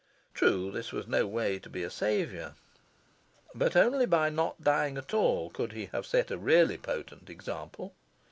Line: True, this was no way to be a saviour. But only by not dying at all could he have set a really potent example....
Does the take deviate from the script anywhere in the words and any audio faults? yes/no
no